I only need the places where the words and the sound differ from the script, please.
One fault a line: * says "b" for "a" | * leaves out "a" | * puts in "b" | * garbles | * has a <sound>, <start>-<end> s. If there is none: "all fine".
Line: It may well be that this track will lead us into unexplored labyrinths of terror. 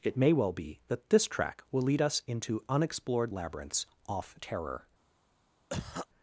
* says "off" for "of"
* has a cough, 5.7-6.1 s